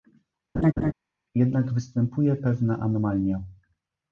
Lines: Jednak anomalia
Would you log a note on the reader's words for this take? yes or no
yes